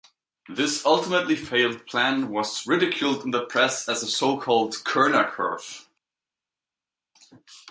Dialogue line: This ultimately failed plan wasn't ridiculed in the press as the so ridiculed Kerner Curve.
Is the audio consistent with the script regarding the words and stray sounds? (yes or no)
no